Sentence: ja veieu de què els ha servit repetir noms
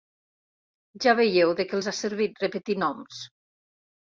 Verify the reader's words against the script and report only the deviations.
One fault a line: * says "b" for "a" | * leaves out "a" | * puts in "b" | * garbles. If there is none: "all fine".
all fine